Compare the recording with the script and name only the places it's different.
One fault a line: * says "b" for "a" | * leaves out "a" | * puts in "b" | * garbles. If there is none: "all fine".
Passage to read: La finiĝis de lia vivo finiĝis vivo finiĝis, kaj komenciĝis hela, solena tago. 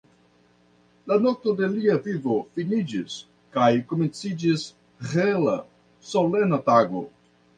* says "nokto" for "finiĝis"
* leaves out "vivo finiĝis"